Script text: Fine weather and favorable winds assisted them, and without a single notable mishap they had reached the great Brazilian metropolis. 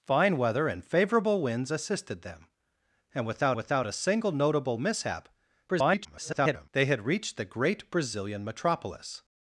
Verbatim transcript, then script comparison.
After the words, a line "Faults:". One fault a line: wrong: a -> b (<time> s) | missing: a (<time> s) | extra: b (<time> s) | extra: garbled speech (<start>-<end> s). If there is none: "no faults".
Fine weather and favorable winds assisted them, and without without a single notable mishap [garbled] they had reached the great Brazilian metropolis.
Faults:
extra: without (3.5 s)
extra: garbled speech (5.7-6.7 s)